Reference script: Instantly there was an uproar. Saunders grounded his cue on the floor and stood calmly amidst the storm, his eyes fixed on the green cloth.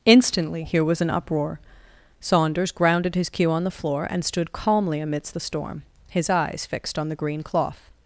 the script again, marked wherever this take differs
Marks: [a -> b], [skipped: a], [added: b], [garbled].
Instantly [there -> here] was an uproar. Saunders grounded his cue on the floor and stood calmly amidst the storm, his eyes fixed on the green cloth.